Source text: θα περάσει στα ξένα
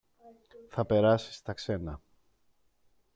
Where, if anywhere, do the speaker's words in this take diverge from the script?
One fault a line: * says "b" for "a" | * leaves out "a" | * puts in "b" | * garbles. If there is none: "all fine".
all fine